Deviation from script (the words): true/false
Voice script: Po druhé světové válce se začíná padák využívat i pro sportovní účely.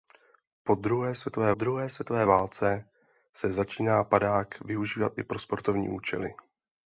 true